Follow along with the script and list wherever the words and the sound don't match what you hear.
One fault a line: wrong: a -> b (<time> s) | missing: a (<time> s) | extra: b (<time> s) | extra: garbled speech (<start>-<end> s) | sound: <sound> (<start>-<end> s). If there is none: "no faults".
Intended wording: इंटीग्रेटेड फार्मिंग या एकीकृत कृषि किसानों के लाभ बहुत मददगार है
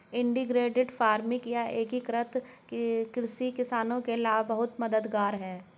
no faults